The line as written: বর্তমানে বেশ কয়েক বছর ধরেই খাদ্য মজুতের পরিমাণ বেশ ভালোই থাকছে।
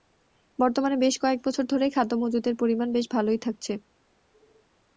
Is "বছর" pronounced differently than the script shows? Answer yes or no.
no